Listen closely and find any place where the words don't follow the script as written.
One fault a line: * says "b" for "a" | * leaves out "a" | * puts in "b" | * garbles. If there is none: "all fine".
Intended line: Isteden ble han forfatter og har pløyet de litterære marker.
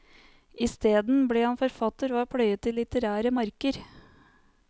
all fine